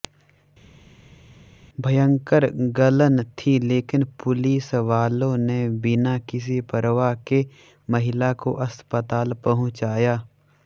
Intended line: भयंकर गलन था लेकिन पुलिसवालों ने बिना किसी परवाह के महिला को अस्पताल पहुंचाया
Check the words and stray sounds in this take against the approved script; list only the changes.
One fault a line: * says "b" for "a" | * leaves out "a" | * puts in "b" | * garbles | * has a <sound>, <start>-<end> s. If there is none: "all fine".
* says "थी" for "था"